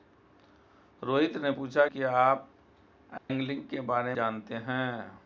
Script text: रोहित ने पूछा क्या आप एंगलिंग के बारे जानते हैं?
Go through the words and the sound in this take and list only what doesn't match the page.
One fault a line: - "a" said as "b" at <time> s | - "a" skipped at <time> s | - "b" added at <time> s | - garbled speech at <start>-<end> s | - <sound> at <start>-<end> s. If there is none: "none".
- dropout at 3.2-3.3 s